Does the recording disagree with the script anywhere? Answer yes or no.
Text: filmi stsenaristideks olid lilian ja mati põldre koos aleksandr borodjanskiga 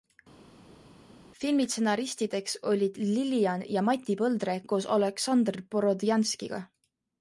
no